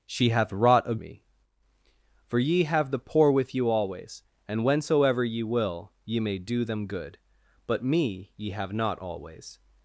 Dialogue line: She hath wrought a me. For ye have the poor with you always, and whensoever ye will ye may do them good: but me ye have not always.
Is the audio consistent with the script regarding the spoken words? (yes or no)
yes